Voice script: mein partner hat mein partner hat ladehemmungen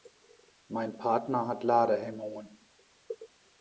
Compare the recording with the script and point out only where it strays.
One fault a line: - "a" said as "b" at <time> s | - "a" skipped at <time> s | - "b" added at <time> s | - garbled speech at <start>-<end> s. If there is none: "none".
- "mein partner hat" skipped at 1.6 s